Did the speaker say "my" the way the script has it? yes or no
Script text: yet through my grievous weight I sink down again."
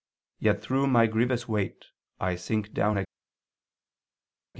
yes